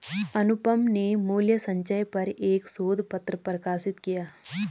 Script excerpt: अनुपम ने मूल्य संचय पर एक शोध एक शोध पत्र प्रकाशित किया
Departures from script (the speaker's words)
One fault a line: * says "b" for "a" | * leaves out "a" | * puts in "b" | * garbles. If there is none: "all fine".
* leaves out "एक शोध"